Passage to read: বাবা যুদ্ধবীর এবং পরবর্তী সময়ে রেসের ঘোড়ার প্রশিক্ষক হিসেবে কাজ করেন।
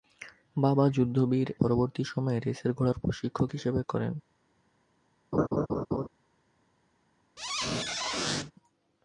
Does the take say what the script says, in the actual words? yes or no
no